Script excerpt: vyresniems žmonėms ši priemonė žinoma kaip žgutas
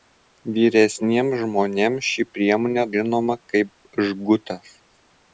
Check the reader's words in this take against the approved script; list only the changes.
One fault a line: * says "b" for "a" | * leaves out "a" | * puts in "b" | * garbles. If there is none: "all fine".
all fine